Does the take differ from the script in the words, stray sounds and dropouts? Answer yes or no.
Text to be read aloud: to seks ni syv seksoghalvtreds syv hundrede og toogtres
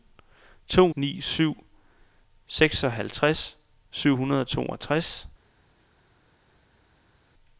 yes